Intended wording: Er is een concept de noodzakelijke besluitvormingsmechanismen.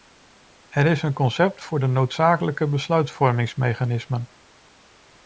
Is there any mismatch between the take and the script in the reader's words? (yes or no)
yes